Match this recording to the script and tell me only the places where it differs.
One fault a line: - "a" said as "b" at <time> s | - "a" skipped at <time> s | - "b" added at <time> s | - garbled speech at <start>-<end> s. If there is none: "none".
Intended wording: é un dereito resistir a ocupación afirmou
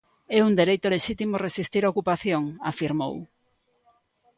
- "lexítimo" added at 0.9 s